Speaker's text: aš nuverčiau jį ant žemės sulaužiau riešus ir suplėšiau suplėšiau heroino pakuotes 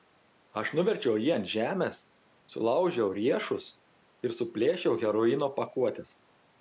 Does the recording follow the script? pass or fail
fail